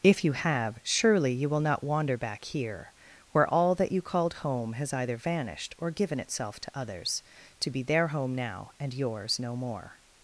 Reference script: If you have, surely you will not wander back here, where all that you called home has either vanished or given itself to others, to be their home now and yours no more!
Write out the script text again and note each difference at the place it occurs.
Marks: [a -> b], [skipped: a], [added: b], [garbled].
If you have, surely you will not wander back here, where all that you called home has either vanished or given itself to others, to be their home now and yours no more!